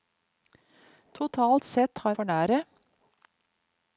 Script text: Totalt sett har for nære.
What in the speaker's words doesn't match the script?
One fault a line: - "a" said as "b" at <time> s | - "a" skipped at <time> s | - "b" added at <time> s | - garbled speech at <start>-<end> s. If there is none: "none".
none